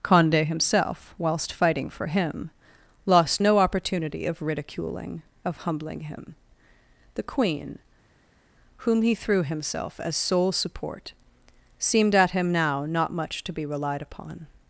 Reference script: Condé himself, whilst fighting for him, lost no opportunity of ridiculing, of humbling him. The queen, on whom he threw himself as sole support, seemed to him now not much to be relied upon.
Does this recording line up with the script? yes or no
no